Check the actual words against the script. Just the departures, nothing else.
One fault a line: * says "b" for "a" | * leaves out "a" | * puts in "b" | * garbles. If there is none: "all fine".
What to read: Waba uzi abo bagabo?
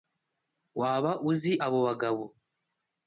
all fine